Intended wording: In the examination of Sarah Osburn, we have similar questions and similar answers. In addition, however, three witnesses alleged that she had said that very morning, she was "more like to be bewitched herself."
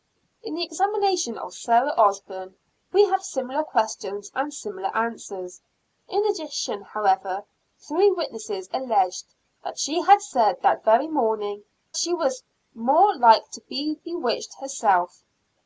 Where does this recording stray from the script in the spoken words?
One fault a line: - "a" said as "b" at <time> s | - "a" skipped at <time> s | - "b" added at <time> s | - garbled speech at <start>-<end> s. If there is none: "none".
none